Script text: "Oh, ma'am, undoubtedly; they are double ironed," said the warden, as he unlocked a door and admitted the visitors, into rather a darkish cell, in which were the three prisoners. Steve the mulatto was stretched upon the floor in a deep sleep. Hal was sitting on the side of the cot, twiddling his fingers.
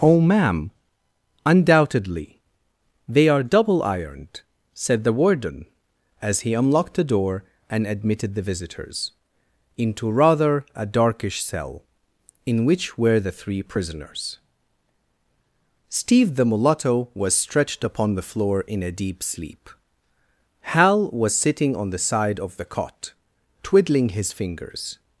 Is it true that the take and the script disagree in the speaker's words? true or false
true